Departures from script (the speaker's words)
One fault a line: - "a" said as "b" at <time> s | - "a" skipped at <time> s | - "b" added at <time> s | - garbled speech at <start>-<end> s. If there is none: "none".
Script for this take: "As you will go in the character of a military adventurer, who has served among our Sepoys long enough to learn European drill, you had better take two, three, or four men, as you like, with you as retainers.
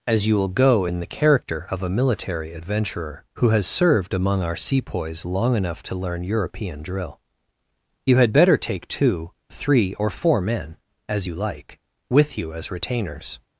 none